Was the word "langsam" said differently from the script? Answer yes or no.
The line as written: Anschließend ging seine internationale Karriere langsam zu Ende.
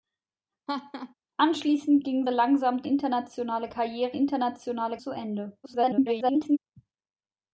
yes